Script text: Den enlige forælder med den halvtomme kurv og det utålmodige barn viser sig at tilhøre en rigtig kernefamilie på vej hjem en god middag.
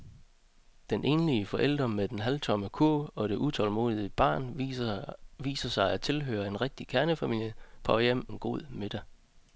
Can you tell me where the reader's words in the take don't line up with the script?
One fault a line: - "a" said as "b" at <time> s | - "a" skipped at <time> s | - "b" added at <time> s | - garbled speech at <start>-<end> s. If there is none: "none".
none